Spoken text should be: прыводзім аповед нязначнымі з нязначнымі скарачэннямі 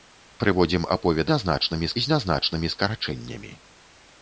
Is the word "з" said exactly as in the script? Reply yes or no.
yes